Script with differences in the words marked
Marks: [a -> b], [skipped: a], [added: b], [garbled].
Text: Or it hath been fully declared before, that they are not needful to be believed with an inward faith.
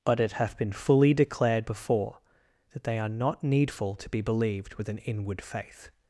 [Or -> But] it hath been fully declared before, that they are not needful to be believed with an inward faith.